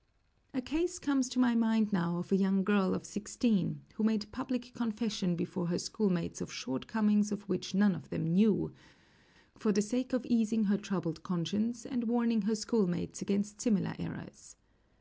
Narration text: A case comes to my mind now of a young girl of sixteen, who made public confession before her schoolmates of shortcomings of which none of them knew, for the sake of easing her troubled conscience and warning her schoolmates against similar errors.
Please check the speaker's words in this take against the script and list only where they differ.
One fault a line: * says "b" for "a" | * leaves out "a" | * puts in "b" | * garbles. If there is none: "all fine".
all fine